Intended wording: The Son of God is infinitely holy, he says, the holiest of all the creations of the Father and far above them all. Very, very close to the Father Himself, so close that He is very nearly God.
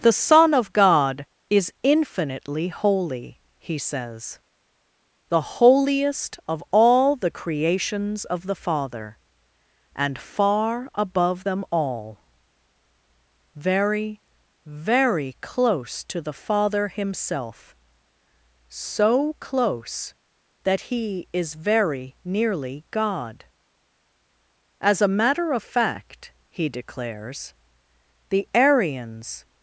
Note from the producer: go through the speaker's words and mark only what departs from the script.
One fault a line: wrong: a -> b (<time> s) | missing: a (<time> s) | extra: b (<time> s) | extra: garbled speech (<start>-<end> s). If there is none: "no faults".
extra: As a matter of fact he declares the Arians (24.8 s)